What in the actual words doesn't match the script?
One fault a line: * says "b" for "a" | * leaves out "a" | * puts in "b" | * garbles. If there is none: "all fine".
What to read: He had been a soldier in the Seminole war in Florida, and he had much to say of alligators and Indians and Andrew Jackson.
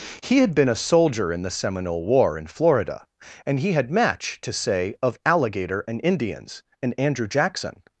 * says "match" for "much"
* says "alligator" for "alligators"